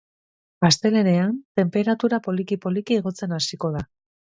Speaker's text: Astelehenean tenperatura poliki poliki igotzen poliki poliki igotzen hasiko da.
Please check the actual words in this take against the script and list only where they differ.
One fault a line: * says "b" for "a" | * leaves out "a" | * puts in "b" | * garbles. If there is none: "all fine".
* leaves out "poliki poliki igotzen"